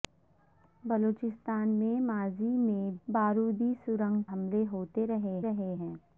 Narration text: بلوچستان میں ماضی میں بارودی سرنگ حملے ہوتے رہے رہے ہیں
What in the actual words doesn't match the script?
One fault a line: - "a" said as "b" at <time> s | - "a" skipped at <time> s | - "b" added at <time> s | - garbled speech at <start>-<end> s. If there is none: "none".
none